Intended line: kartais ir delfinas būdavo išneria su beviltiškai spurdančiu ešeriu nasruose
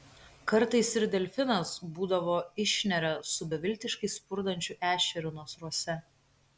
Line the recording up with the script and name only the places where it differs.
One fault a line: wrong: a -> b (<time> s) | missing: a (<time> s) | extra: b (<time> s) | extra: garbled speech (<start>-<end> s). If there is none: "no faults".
no faults